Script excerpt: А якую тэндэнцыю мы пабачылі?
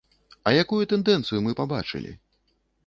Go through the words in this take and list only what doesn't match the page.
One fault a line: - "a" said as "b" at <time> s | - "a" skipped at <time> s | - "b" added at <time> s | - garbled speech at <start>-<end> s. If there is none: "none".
none